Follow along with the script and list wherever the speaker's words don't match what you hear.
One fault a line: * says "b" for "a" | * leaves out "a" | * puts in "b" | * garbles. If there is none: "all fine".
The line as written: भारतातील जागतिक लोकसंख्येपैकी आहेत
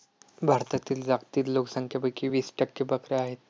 * puts in "वीस टक्के बकऱ्या"